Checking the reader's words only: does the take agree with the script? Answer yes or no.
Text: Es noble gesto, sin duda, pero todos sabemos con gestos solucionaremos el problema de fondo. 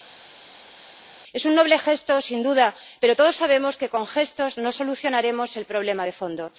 no